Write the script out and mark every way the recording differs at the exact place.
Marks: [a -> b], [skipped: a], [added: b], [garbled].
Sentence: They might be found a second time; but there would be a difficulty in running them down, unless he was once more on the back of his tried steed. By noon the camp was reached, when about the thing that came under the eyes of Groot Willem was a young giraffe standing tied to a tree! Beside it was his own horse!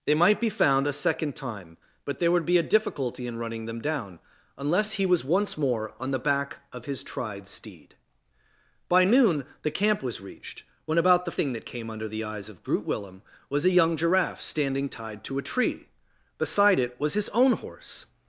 They might be found a second time; but there would be a difficulty in running them down, unless he was once more on the back of his tried steed. By noon the camp was reached, when about the thing that came under the eyes of Groot Willem was a young giraffe standing tied to a tree! Beside it was his own horse!